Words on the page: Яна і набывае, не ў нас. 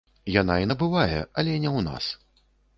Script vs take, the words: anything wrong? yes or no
yes